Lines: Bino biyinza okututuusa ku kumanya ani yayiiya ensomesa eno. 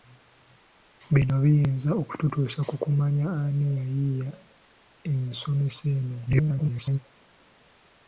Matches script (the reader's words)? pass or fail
fail